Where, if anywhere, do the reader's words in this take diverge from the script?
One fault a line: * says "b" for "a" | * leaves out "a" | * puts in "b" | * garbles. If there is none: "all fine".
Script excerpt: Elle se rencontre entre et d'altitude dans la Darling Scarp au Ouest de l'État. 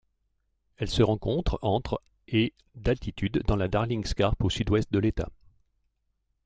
* puts in "Sud"